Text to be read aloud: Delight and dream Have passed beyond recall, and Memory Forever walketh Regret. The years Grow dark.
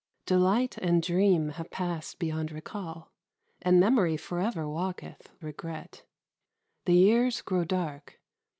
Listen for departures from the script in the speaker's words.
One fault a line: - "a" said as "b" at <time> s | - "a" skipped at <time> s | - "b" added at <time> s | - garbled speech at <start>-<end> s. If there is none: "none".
none